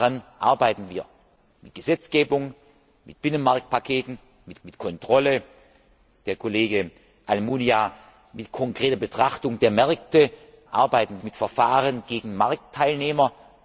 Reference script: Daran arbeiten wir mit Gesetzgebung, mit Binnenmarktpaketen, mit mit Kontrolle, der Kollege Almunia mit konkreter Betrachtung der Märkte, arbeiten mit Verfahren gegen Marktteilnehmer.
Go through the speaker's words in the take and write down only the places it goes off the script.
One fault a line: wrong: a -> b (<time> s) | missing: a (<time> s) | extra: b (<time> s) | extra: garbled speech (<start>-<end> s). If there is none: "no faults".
no faults